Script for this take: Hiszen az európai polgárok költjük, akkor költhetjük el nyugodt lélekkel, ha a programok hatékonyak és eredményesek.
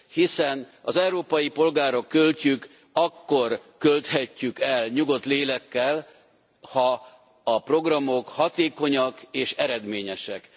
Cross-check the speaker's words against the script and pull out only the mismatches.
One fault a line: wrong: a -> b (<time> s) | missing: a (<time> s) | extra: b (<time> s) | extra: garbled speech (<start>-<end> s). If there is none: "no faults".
no faults